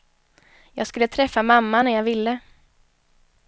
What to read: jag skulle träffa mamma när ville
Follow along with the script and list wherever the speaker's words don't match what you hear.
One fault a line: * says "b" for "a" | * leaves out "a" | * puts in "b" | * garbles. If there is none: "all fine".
* puts in "jag"